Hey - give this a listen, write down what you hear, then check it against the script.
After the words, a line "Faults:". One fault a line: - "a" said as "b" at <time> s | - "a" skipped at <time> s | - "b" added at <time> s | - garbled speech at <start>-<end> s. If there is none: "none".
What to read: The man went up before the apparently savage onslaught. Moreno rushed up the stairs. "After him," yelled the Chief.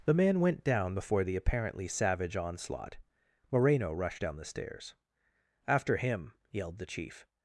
The man went down before the apparently savage onslaught. Moreno rushed down the stairs. "After him," yelled the Chief.
Faults:
- "up" said as "down" at 0.6 s
- "up" said as "down" at 4.2 s